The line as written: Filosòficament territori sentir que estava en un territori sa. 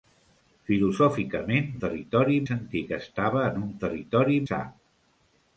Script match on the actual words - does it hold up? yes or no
yes